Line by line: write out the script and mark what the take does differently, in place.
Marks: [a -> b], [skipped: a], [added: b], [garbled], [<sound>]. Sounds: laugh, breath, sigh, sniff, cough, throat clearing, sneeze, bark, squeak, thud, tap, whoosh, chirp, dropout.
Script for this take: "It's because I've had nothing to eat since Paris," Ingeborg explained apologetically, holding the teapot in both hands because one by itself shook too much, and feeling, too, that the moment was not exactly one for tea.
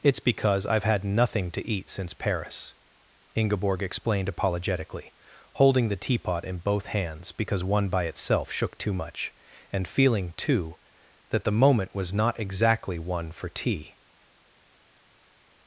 "It's because I've had nothing to eat since Paris," Ingeborg explained apologetically, holding the teapot in both hands because one by itself shook too much, and feeling, too, that the moment was not exactly one for tea.